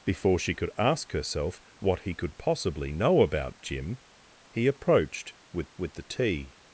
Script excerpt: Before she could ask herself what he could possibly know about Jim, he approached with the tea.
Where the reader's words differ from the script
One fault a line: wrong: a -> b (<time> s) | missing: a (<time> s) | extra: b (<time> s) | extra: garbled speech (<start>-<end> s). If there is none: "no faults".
extra: with (5.8 s)